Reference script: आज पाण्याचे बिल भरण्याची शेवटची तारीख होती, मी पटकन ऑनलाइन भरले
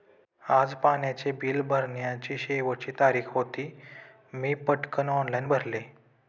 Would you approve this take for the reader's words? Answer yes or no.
yes